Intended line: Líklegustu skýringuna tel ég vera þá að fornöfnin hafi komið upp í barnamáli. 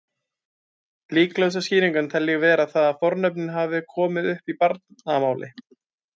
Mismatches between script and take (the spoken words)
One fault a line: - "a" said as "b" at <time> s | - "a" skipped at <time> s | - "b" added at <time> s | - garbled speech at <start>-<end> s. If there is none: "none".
none